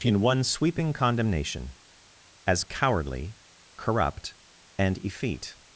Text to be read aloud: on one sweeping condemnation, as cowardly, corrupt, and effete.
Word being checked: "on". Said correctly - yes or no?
no